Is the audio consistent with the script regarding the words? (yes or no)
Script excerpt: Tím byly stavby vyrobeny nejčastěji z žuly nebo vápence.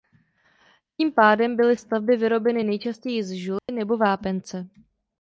no